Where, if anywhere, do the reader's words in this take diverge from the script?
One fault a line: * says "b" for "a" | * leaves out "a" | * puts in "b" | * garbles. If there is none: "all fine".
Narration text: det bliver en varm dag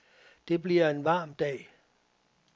all fine